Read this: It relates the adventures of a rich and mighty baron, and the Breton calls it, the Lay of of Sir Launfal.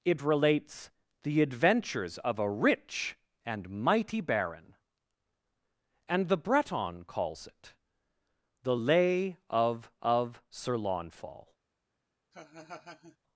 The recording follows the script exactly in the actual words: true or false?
true